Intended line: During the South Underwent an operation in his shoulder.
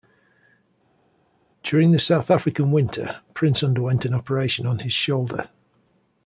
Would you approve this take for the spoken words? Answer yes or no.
no